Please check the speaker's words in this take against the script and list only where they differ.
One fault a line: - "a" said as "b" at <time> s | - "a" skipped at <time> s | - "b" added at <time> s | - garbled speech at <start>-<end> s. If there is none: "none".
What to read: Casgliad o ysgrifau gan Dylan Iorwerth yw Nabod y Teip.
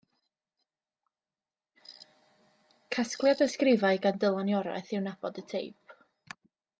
none